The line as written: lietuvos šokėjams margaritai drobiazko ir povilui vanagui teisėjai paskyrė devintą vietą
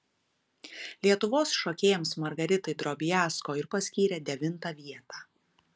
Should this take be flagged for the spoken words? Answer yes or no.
yes